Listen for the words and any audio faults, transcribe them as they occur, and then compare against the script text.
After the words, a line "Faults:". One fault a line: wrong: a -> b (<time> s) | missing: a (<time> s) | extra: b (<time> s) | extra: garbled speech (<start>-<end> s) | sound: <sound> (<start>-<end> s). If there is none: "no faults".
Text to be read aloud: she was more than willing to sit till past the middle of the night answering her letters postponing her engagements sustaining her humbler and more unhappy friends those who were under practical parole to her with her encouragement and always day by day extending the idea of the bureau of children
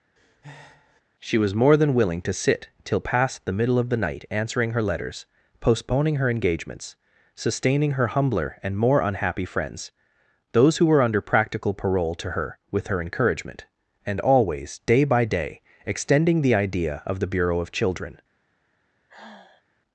she was more than willing to sit till past the middle of the night answering her letters postponing her engagements sustaining her humbler and more unhappy friends those who were under practical parole to her with her encouragement and always day by day extending the idea of the bureau of children
Faults:
sound: breath (0.2-1.0 s)
sound: sigh (19.1-19.6 s)